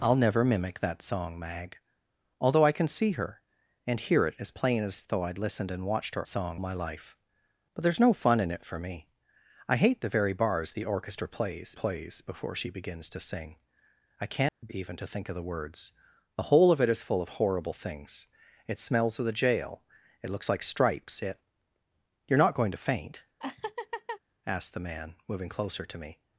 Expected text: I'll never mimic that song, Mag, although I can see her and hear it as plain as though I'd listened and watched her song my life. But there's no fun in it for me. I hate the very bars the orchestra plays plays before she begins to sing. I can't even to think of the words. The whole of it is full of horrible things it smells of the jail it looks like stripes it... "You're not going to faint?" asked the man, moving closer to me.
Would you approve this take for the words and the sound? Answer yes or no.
no